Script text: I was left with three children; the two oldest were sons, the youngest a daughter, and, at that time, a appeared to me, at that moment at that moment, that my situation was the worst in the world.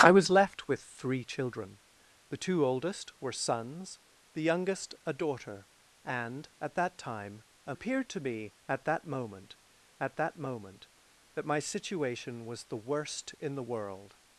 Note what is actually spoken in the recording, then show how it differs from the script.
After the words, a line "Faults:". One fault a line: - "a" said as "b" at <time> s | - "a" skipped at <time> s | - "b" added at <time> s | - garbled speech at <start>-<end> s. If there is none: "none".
I was left with three children; the two oldest were sons, the youngest a daughter, and, at that time, a appeared to me, at that moment at that moment, that my situation was the worst in the world.
Faults:
none